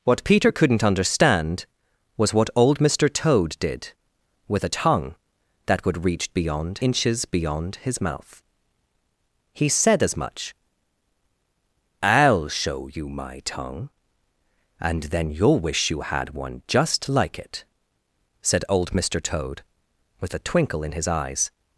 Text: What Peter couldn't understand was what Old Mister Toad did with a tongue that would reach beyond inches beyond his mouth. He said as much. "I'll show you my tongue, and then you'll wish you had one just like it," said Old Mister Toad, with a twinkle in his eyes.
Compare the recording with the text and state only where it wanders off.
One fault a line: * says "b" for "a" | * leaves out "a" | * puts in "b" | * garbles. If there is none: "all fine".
all fine